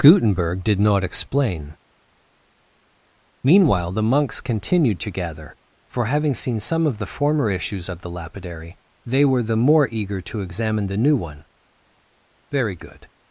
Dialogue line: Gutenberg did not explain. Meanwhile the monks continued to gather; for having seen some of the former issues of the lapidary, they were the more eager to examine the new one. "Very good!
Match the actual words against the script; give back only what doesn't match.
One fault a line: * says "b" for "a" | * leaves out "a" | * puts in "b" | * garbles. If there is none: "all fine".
all fine